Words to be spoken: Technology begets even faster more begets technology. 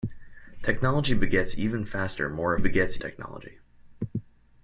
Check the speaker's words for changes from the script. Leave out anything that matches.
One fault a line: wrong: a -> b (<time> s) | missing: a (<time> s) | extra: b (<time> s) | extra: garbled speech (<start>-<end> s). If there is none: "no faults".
no faults